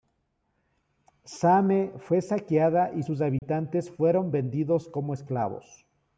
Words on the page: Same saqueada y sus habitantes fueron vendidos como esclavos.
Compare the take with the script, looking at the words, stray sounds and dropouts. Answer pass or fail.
fail